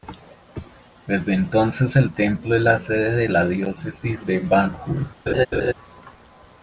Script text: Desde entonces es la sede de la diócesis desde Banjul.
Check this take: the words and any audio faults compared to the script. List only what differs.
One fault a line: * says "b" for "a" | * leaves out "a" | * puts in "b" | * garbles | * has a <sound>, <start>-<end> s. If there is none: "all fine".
* puts in "el templo"
* says "de" for "desde"
* has a laugh, 5.3-5.7 s